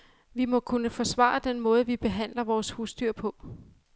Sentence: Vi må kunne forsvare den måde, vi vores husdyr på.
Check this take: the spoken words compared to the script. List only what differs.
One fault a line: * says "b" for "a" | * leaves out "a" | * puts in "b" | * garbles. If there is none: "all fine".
* puts in "behandler"